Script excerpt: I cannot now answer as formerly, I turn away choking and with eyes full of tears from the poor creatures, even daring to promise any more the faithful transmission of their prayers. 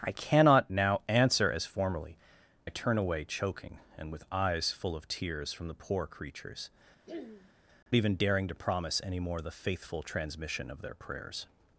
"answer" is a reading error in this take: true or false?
false